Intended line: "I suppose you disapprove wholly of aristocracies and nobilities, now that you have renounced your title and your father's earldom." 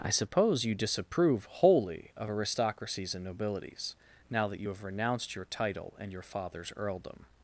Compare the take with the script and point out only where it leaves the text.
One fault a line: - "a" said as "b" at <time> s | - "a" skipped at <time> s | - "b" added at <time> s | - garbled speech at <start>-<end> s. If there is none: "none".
none